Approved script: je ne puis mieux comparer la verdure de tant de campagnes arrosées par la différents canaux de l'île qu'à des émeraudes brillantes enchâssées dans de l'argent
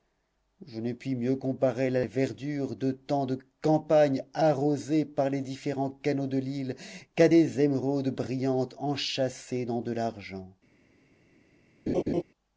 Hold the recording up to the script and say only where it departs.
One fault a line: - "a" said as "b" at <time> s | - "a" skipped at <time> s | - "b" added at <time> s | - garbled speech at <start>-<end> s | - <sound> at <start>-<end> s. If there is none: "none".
- "la" said as "les" at 5.3 s
- laugh at 11.9-12.2 s